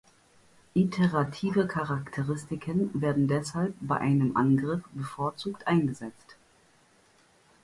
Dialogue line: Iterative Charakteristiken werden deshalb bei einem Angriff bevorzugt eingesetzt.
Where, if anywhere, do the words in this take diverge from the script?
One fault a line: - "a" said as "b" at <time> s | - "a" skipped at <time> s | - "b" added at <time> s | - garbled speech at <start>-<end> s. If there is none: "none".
none